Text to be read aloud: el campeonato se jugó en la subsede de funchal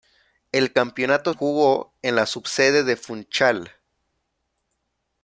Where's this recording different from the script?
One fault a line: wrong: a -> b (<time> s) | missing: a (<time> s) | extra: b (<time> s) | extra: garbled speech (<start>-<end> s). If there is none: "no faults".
missing: se (1.3 s)